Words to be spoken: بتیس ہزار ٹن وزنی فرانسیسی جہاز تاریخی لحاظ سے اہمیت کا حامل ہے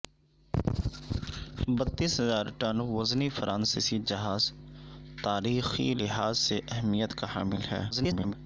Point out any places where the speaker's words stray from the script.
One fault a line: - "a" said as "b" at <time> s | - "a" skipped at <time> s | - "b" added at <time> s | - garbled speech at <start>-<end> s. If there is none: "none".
- garbled speech at 7.9-8.3 s